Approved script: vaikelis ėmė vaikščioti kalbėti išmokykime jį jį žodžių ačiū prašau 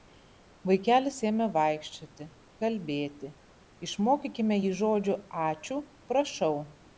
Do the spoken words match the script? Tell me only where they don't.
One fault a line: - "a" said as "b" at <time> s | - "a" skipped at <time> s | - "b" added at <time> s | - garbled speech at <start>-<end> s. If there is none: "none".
- "jį" skipped at 4.7 s